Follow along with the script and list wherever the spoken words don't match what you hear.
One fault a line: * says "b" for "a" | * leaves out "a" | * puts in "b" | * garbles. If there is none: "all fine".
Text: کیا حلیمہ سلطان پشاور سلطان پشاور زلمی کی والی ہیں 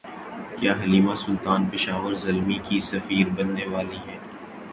* says "زلمی کی سفیر بننے" for "سلطان پشاور زلمی کی"